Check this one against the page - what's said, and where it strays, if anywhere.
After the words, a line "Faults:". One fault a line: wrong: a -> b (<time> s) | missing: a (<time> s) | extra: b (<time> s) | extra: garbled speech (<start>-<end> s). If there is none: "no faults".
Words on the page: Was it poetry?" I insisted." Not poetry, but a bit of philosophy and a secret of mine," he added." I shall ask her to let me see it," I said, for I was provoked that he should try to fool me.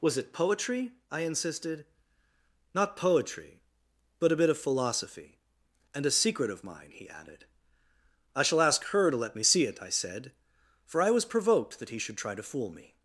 Was it poetry?" I insisted." Not poetry, but a bit of philosophy and a secret of mine," he added." I shall ask her to let me see it," I said, for I was provoked that he should try to fool me.
Faults:
no faults